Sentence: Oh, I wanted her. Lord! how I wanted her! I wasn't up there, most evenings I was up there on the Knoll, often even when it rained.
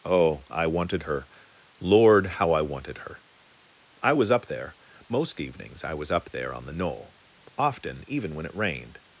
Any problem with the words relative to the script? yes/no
yes